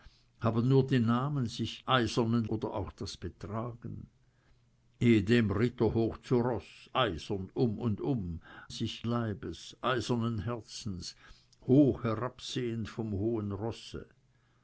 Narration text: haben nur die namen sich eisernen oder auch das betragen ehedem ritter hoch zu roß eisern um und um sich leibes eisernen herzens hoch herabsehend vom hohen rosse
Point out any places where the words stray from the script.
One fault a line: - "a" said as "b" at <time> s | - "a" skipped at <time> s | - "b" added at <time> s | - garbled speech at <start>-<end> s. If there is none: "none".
none